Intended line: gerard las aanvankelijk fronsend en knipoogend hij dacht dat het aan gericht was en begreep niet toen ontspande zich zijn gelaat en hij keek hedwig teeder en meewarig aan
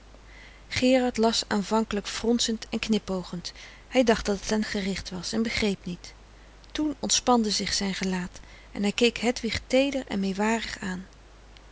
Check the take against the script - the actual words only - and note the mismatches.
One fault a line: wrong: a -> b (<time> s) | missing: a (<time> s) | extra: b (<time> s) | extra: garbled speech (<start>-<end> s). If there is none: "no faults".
no faults